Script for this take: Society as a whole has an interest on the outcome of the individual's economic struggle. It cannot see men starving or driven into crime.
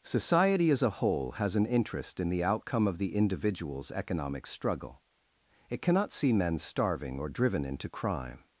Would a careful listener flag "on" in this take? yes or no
yes